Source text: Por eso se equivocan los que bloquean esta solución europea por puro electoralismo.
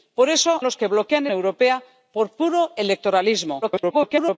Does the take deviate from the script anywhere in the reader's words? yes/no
yes